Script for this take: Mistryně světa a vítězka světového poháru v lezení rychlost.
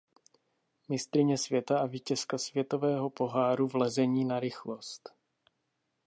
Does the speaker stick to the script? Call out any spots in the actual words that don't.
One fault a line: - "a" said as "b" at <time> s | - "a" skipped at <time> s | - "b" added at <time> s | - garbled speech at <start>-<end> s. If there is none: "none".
- "na" added at 4.2 s